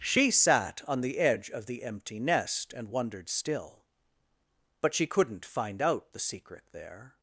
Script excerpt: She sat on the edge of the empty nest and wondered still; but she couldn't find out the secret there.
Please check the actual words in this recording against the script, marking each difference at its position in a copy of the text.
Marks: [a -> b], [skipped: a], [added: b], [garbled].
She sat on the edge of the empty nest and wondered still; but she couldn't find out the secret there.